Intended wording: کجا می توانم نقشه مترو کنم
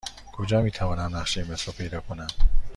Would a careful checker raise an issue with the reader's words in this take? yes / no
yes